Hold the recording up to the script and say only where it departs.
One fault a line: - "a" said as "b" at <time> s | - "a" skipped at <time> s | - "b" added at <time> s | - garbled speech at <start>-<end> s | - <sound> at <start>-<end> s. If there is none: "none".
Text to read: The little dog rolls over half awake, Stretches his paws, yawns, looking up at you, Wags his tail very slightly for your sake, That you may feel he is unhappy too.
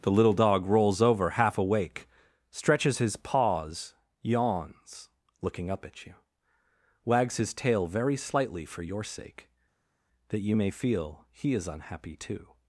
none